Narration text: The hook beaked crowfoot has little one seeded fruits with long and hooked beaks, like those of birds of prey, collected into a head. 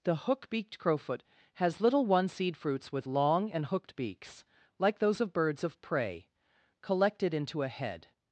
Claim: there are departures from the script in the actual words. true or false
true